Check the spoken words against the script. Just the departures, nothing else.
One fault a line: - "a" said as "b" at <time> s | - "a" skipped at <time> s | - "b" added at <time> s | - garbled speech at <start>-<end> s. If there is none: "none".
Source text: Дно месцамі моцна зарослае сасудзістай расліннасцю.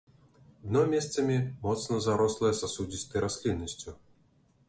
none